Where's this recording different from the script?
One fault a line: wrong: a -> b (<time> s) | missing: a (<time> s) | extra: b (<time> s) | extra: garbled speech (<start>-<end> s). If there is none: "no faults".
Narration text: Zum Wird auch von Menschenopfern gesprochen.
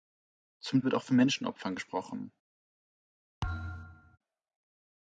no faults